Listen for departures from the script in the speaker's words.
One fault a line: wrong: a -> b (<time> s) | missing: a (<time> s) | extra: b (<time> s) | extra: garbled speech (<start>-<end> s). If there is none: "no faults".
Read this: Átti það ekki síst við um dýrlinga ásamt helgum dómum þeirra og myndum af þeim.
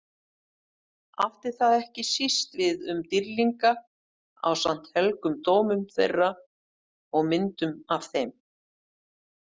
no faults